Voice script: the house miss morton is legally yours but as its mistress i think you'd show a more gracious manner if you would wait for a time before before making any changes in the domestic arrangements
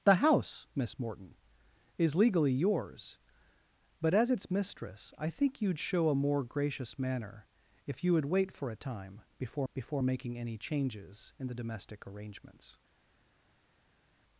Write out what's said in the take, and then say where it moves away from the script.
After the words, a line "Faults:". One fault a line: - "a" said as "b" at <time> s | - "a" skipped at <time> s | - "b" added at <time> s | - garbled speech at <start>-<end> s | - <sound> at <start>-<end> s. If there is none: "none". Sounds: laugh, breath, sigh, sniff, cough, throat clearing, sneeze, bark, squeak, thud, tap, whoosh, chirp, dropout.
the house miss morton is legally yours but as its mistress i think you'd show a more gracious manner if you would wait for a time before before making any changes in the domestic arrangements
Faults:
none